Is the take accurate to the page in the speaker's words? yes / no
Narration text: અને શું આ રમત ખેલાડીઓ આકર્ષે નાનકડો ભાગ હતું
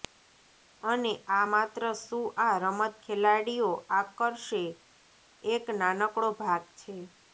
no